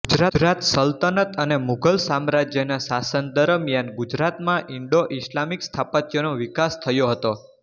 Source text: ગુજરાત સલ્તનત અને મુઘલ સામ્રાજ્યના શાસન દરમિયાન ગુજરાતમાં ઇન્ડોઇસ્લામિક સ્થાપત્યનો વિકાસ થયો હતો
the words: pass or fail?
pass